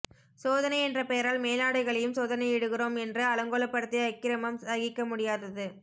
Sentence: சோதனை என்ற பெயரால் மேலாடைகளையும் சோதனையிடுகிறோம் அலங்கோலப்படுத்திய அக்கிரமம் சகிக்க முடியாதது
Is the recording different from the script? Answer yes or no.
yes